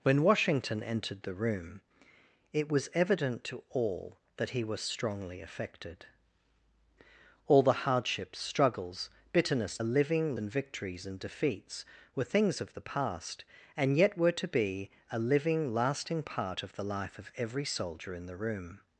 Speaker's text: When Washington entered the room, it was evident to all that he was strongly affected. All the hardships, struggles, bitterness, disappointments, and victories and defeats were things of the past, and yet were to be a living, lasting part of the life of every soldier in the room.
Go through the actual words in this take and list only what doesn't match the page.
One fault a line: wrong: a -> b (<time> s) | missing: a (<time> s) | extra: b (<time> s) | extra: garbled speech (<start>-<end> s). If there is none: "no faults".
wrong: disappointments -> living (9.8 s)